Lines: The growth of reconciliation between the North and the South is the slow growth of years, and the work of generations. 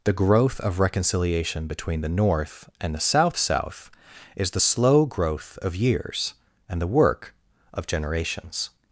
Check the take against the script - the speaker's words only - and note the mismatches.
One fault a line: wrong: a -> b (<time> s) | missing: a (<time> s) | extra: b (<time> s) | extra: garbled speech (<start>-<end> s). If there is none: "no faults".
extra: South (3.4 s)